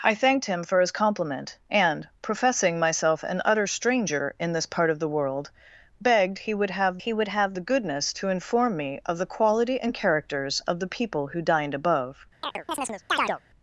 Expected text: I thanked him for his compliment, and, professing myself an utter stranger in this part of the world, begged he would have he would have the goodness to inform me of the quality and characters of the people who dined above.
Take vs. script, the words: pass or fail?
pass